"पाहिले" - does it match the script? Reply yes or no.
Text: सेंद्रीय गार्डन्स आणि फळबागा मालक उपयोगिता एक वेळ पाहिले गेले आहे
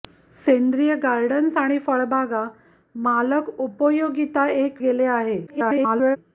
no